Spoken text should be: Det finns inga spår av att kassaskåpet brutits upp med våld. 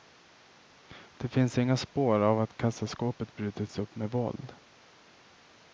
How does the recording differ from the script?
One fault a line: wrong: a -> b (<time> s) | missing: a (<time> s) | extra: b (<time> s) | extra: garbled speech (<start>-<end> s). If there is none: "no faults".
no faults